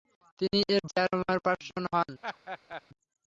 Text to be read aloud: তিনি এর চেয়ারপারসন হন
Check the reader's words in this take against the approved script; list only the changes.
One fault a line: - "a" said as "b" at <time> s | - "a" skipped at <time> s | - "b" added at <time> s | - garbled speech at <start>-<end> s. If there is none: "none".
none